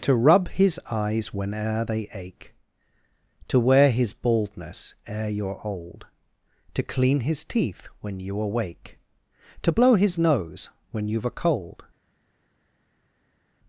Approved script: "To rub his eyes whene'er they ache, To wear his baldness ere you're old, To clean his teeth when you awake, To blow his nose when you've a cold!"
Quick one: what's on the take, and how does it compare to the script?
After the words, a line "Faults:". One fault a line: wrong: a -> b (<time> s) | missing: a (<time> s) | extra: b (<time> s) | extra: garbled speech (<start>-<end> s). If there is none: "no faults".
"To rub his eyes whene'er they ache, To wear his baldness ere you're old, To clean his teeth when you awake, To blow his nose when you've a cold!"
Faults:
no faults